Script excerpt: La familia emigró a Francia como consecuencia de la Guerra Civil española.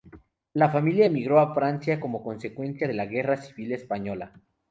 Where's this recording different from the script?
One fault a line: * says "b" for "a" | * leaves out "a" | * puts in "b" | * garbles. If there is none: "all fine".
all fine